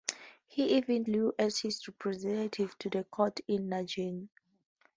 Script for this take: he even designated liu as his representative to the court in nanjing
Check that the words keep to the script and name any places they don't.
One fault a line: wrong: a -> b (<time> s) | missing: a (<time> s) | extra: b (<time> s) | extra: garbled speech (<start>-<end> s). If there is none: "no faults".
missing: designated (1.0 s)